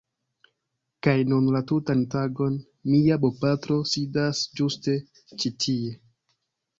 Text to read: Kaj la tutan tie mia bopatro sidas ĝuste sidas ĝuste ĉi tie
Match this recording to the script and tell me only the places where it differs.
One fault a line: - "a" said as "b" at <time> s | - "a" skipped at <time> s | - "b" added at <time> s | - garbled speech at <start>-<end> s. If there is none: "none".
- "nun" added at 1.3 s
- "tie" said as "tagon" at 2.1 s
- "sidas ĝuste" skipped at 4.9 s